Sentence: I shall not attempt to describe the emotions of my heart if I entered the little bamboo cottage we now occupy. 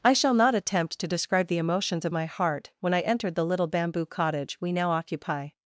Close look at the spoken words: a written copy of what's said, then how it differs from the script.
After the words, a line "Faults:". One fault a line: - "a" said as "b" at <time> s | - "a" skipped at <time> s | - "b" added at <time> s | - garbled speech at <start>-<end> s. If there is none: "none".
I shall not attempt to describe the emotions of my heart when I entered the little bamboo cottage we now occupy.
Faults:
- "if" said as "when" at 2.8 s